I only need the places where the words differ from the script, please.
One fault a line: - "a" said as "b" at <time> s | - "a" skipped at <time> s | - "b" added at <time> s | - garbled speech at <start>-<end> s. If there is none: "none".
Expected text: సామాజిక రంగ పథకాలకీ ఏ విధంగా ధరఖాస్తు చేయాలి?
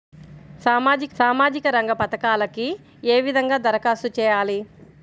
- "సామాజిక" added at 1.2 s